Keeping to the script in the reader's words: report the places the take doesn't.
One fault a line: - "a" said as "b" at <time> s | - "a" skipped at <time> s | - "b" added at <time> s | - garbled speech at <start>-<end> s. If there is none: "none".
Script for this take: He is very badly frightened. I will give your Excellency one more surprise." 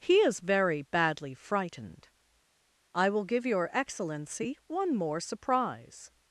none